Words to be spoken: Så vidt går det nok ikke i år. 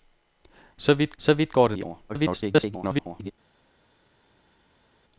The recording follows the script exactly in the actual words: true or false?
false